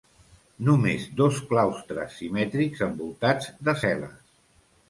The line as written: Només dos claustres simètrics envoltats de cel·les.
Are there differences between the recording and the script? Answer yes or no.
no